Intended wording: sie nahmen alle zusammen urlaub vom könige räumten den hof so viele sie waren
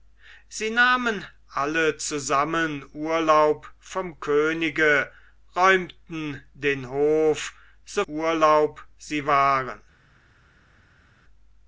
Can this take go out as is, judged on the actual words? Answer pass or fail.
fail